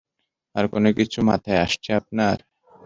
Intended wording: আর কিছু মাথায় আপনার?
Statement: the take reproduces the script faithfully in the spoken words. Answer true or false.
false